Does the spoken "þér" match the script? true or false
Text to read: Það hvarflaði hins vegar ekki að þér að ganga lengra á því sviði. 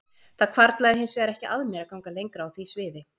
false